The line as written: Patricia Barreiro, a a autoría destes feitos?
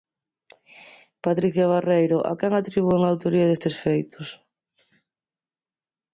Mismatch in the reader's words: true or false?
true